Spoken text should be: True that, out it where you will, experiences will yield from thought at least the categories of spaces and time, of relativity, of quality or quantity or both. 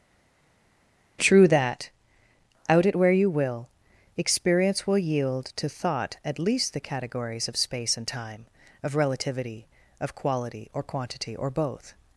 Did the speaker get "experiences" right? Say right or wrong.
wrong